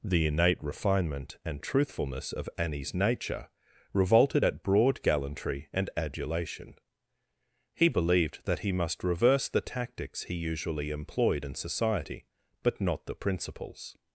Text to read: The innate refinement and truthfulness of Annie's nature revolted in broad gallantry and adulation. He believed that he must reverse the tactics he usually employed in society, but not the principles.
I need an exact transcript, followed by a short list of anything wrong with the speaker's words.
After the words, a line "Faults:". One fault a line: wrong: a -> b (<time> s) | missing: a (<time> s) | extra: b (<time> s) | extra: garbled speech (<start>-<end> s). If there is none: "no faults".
The innate refinement and truthfulness of Annie's nature revolted at broad gallantry and adulation. He believed that he must reverse the tactics he usually employed in society, but not the principles.
Faults:
wrong: in -> at (4.4 s)